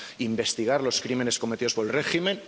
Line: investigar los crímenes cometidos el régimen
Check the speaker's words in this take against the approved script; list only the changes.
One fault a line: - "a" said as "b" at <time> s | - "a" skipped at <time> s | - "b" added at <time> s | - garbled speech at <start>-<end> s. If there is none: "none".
- "por" added at 1.7 s